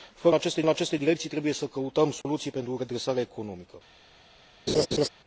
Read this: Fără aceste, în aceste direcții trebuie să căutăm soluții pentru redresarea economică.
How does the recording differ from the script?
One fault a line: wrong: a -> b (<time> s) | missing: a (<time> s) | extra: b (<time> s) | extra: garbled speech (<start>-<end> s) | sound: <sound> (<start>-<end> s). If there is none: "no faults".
sound: dropout (2.2-2.3 s)
sound: laugh (4.7-5.1 s)